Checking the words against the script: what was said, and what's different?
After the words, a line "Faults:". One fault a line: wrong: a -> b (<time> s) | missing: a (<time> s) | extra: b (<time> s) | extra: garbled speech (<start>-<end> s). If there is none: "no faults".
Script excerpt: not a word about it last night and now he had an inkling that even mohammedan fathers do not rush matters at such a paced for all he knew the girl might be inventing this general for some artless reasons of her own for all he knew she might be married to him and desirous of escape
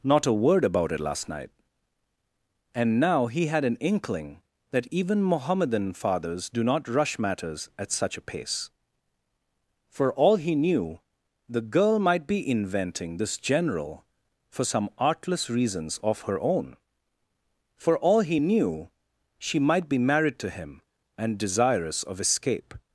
not a word about it last night and now he had an inkling that even mohammedan fathers do not rush matters at such a pace for all he knew the girl might be inventing this general for some artless reasons of her own for all he knew she might be married to him and desirous of escape
Faults:
wrong: paced -> pace (8.2 s)